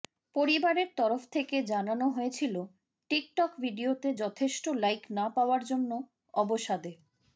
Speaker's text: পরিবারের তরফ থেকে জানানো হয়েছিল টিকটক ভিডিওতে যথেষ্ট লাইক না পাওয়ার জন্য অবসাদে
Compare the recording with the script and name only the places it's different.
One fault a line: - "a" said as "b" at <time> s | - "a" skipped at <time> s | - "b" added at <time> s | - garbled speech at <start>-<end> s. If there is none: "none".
none